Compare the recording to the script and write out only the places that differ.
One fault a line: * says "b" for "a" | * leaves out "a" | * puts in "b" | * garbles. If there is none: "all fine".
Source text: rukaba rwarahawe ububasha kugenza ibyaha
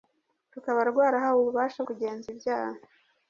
all fine